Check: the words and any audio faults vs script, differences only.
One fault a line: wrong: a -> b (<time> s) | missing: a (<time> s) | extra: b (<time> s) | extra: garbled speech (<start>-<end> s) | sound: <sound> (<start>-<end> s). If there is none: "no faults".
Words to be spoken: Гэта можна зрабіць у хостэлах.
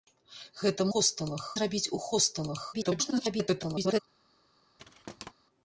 wrong: можна -> хостэлах (0.9 s)
extra: garbled speech (2.7-4.0 s)
sound: thud (4.8-5.3 s)